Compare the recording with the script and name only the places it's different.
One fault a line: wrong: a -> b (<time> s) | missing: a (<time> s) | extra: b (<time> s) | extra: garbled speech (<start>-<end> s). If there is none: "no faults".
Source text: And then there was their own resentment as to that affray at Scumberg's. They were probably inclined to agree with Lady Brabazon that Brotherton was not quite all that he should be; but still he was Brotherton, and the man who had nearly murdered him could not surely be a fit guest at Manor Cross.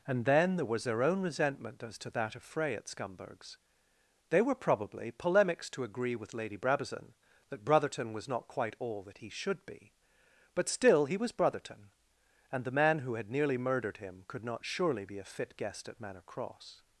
wrong: inclined -> polemics (5.1 s)